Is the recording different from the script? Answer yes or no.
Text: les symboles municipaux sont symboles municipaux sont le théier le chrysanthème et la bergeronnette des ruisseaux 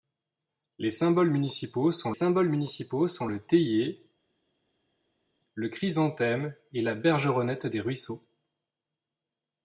no